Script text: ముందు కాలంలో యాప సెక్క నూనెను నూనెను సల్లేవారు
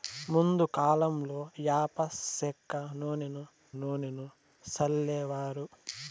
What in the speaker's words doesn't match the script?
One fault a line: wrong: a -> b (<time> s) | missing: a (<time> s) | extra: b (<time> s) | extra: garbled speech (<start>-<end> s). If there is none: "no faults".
no faults